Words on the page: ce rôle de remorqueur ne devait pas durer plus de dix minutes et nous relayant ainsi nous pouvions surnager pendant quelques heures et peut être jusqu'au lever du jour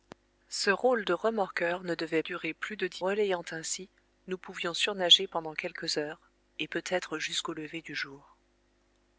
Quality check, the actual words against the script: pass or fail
fail